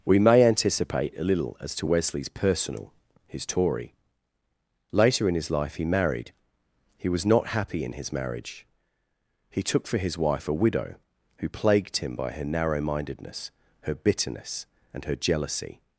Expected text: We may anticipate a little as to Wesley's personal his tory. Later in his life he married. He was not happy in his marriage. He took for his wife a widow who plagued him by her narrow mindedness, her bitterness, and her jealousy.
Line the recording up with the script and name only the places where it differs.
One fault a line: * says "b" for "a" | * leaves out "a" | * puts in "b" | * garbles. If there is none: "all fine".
all fine